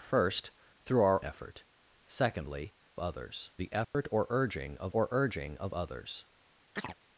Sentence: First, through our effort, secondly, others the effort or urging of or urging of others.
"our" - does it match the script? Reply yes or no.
yes